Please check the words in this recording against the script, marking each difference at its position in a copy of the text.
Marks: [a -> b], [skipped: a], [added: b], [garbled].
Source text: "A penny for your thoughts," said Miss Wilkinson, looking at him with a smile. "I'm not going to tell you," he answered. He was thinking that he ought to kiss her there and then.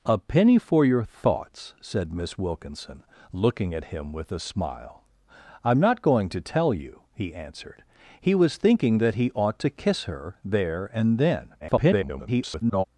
"A penny for your thoughts," said Miss Wilkinson, looking at him with a smile. "I'm not going to tell you," he answered. He was thinking that he ought to kiss her there and then. [garbled]